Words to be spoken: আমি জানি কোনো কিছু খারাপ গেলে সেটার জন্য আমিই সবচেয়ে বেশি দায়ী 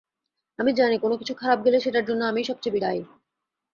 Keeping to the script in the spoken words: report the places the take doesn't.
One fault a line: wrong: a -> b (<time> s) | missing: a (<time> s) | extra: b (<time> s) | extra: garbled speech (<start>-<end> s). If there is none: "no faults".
missing: বেশি (2.8 s)